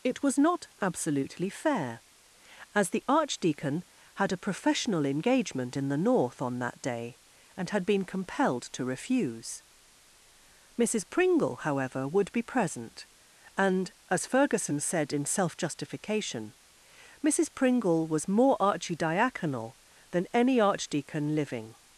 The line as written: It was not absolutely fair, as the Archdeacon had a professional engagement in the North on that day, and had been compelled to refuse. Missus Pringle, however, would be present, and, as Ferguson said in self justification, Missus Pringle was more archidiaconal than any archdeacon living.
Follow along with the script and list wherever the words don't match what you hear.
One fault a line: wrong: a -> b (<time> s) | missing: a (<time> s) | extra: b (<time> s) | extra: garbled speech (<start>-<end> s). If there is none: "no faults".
no faults